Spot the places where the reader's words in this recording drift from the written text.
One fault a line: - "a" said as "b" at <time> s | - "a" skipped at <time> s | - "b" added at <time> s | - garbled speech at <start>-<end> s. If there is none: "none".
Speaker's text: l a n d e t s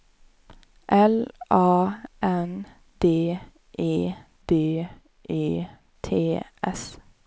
- "d e" added at 4.5 s